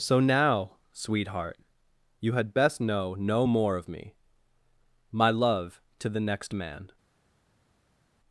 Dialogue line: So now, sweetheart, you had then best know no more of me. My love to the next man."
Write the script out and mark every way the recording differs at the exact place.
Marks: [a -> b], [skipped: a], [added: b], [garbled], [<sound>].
So now, sweetheart, you had [skipped: then] best know no more of me. My love to the next man."